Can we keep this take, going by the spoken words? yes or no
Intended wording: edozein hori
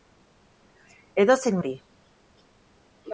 yes